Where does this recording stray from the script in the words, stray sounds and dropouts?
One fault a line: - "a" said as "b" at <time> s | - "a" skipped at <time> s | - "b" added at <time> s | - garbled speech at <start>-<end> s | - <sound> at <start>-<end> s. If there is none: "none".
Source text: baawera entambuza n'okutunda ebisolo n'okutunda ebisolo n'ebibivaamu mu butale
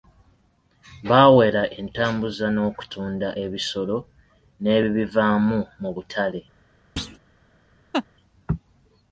- "n'okutunda ebisolo" skipped at 4.0 s
- thud at 7.0-7.2 s
- laugh at 7.9-8.1 s